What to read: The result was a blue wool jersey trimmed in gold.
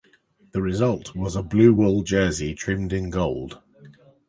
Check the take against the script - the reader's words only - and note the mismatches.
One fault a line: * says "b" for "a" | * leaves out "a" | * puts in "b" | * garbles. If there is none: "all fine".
all fine